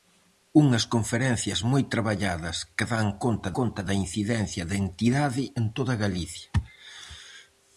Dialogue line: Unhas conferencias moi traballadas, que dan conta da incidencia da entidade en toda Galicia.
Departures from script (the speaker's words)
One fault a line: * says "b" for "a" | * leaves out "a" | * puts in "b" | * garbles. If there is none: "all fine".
* puts in "conta"